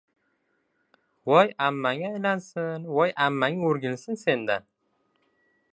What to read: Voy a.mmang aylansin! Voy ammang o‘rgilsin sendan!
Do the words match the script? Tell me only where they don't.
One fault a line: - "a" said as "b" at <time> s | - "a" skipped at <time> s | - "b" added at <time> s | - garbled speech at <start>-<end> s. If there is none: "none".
none